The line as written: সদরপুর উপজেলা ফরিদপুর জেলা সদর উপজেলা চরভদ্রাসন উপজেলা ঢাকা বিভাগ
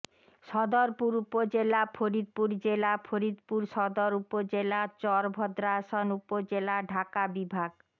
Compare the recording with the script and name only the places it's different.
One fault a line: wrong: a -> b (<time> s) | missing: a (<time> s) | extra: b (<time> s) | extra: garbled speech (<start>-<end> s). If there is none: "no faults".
extra: ফরিদপুর (3.0 s)